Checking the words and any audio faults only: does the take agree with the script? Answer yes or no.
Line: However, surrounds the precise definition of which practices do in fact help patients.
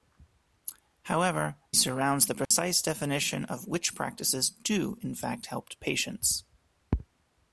no